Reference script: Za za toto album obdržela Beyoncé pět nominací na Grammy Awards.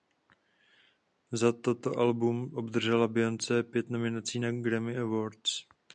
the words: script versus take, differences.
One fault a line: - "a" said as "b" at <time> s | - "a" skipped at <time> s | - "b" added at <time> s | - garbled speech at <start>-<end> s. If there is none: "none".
- "za" skipped at 1.5 s